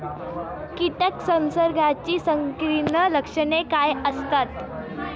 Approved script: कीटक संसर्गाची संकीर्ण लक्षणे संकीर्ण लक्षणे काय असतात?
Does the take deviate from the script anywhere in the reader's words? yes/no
yes